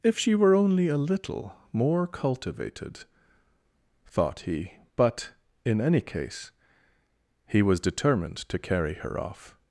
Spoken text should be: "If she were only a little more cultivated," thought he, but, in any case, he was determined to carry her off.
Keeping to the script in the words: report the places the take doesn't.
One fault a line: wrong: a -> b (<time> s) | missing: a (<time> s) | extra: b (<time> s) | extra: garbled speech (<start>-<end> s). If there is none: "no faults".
no faults